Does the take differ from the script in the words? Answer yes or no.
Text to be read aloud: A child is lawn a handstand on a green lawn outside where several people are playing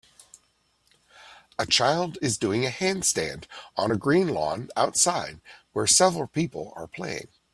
yes